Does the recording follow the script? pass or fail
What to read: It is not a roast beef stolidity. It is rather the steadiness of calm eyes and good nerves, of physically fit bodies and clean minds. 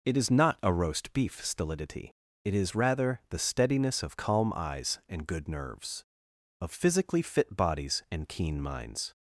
fail